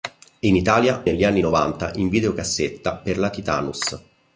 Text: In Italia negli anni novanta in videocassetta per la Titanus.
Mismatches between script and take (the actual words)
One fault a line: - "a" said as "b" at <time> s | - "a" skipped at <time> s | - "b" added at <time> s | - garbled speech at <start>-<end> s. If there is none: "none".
none